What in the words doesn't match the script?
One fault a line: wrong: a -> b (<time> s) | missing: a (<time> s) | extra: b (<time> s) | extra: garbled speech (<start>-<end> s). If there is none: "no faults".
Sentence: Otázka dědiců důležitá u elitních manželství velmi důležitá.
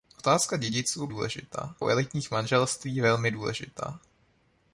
no faults